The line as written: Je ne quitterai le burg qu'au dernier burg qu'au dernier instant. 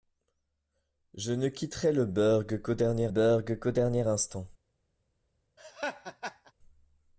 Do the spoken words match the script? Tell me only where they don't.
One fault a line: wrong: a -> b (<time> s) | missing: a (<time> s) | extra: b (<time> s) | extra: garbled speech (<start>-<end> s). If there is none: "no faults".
no faults